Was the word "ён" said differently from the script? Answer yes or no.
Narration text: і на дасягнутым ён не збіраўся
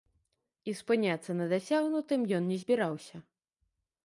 no